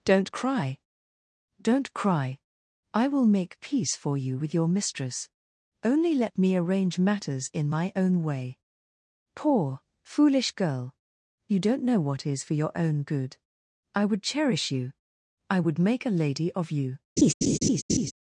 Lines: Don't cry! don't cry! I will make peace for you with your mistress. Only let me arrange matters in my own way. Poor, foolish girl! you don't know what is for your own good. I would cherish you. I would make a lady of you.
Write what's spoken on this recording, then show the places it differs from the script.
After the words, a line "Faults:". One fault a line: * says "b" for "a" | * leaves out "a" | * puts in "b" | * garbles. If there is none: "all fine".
Don't cry! don't cry! I will make peace for you with your mistress. Only let me arrange matters in my own way. Poor, foolish girl! you don't know what is for your own good. I would cherish you. I would make a lady of you.
Faults:
all fine